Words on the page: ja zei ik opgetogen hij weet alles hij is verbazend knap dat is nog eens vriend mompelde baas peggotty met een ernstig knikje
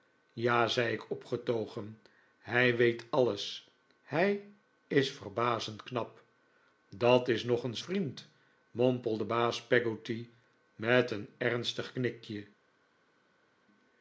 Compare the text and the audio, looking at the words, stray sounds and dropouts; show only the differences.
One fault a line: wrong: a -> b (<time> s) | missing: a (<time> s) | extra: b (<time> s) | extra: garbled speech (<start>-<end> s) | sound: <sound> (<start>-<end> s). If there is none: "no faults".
no faults